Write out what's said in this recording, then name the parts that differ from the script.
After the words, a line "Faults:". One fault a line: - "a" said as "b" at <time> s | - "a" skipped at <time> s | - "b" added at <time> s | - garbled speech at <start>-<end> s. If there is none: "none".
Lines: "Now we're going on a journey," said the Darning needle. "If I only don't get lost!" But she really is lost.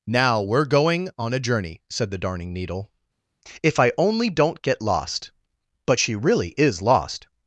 "Now we're going on a journey," said the Darning needle. "If I only don't get lost!" But she really is lost.
Faults:
none